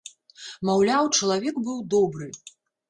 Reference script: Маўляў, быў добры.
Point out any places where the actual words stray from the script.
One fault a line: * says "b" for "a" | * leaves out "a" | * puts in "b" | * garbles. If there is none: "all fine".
* puts in "чалавек"